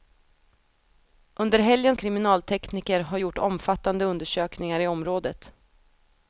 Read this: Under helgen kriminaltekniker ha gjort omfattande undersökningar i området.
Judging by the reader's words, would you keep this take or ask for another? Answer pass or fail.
pass